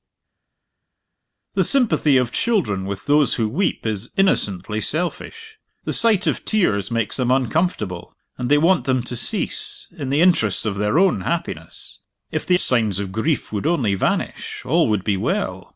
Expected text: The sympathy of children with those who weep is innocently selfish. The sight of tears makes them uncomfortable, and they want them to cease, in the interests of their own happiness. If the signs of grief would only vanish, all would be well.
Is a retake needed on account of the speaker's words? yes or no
no